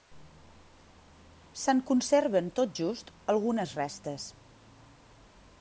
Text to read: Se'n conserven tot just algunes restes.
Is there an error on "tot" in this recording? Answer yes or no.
no